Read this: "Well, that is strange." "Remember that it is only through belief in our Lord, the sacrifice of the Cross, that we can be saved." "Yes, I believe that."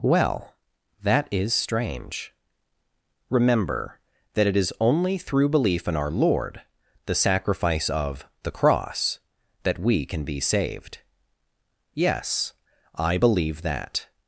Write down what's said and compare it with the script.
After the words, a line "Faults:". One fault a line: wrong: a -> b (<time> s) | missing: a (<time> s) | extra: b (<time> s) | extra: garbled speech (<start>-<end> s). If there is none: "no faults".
"Well, that is strange." "Remember that it is only through belief in our Lord, the sacrifice of the Cross, that we can be saved." "Yes, I believe that."
Faults:
no faults